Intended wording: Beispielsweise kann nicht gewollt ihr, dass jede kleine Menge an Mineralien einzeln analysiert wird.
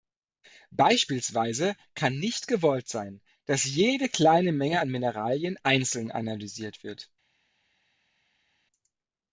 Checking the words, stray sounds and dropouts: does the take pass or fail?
fail